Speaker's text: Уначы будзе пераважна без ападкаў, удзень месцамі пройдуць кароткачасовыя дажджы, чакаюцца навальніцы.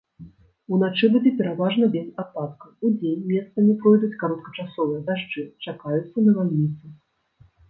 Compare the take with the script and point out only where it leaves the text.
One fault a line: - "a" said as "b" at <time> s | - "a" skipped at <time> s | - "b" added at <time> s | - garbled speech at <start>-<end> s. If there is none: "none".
none